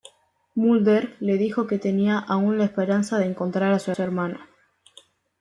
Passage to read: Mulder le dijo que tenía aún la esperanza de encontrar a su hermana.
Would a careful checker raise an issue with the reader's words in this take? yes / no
yes